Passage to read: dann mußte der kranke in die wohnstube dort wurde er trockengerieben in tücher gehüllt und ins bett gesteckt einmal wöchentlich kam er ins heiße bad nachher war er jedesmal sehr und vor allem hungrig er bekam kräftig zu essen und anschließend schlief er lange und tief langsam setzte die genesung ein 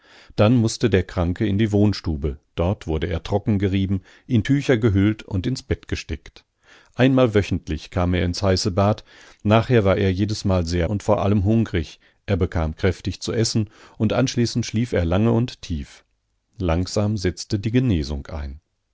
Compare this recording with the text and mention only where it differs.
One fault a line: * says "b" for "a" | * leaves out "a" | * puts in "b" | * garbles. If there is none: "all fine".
all fine